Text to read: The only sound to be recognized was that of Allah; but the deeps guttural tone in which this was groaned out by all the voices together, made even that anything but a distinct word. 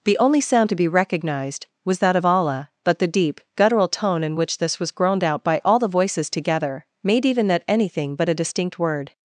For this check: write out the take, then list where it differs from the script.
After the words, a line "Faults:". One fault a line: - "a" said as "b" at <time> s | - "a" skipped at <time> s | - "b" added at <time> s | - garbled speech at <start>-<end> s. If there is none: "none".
The only sound to be recognized was that of Allah; but the deep guttural tone in which this was groaned out by all the voices together, made even that anything but a distinct word.
Faults:
- "deeps" said as "deep" at 3.1 s